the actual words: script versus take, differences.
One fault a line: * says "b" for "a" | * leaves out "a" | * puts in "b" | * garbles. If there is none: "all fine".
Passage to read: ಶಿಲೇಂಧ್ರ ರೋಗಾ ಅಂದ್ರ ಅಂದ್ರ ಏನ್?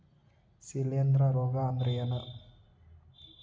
* leaves out "ಅಂದ್ರ"